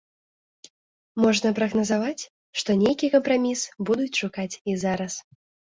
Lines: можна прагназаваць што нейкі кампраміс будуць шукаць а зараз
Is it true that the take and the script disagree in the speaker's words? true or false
true